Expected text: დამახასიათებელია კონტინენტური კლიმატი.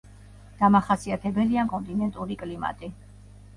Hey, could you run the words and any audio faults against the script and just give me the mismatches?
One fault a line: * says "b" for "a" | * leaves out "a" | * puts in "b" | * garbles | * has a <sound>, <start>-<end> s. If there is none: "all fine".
all fine